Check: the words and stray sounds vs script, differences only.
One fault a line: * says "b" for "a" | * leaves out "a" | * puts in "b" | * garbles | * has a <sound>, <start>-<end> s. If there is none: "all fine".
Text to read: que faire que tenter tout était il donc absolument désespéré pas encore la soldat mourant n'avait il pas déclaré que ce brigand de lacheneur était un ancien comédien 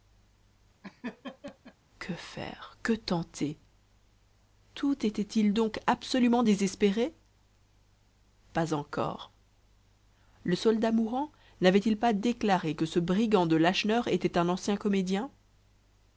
* has a laugh, 0.8-1.8 s
* says "le" for "la"